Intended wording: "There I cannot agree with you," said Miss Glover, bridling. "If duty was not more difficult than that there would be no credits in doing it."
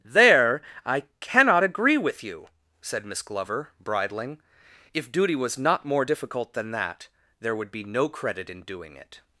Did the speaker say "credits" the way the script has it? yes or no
no